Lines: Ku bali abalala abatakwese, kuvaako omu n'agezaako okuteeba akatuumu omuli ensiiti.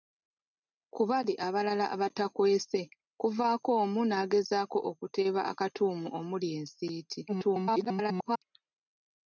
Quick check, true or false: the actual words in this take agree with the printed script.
false